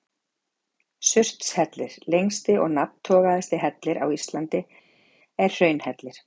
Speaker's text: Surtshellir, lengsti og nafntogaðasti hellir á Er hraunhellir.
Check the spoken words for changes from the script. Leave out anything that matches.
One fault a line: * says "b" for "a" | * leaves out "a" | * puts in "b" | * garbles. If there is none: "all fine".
* puts in "Íslandi"